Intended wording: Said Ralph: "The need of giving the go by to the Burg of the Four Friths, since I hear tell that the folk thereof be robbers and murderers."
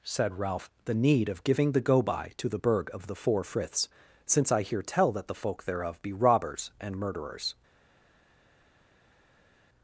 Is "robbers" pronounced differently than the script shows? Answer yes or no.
no